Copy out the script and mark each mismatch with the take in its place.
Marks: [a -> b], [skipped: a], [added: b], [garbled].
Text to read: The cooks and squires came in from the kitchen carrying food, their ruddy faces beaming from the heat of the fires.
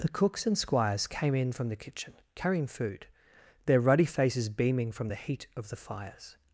The cooks and squires came in from the kitchen carrying food, their ruddy faces beaming from the heat of the fires.